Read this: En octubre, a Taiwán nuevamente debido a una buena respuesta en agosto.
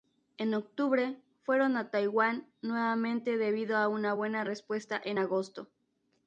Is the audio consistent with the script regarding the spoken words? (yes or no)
no